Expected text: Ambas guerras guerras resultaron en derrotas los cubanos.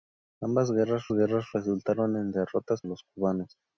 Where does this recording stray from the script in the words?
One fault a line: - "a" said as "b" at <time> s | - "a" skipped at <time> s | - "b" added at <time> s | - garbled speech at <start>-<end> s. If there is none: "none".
none